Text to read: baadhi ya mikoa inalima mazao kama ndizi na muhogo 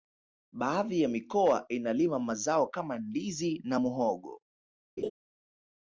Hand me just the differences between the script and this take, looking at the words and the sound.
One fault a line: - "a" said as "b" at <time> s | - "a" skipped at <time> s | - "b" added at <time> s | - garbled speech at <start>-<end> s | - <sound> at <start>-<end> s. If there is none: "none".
- laugh at 5.0-5.1 s